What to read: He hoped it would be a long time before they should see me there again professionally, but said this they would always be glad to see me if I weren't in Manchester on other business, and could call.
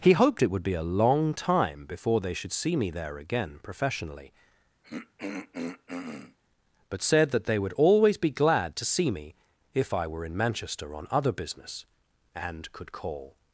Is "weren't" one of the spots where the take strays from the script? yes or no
yes